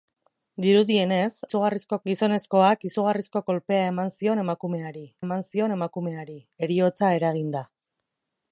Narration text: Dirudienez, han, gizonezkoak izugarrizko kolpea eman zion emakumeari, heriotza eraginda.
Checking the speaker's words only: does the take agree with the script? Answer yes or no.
no